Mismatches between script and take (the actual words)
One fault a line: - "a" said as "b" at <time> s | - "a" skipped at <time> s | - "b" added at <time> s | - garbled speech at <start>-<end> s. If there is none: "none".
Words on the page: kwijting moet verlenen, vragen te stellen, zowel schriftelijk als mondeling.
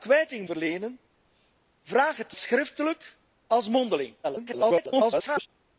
- "moet" skipped at 0.5 s
- "stellen zowel" skipped at 2.4 s
- garbled speech at 4.2-5.5 s